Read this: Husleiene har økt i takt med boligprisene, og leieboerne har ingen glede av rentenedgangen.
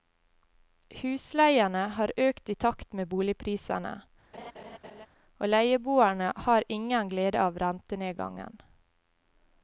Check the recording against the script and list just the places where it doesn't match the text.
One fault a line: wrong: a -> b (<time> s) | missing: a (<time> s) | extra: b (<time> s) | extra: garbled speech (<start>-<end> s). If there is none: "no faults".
no faults